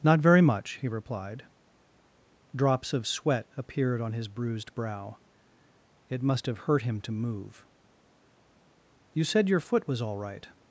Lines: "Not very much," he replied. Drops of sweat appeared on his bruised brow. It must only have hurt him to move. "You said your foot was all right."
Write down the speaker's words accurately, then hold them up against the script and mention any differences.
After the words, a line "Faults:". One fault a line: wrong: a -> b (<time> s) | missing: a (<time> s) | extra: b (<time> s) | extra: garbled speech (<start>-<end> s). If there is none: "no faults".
"Not very much," he replied. Drops of sweat appeared on his bruised brow. It must have hurt him to move. "You said your foot was all right."
Faults:
missing: only (6.5 s)